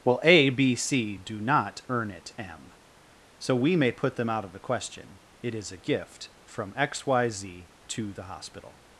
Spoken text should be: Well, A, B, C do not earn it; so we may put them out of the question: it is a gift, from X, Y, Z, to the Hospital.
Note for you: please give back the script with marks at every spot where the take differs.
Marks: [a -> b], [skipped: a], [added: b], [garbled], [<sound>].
Well, A, B, C do not earn it; [added: m] so we may put them out of the question: it is a gift, from X, Y, Z, to the Hospital.